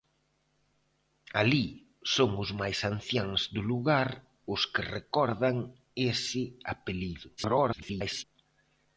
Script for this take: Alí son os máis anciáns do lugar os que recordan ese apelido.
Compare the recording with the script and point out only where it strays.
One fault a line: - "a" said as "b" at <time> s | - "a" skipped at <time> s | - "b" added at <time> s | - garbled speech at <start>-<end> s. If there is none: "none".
- garbled speech at 7.4-8.2 s